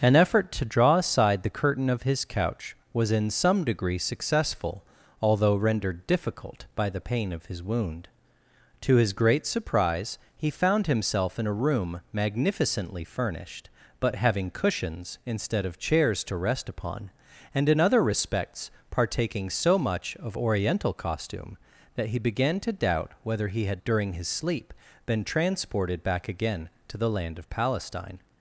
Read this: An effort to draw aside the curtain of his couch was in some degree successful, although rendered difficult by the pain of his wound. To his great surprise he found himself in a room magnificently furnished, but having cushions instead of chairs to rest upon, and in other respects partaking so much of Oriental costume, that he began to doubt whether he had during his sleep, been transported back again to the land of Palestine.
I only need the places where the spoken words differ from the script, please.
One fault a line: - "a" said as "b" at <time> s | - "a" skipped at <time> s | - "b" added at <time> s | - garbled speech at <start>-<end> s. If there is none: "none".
none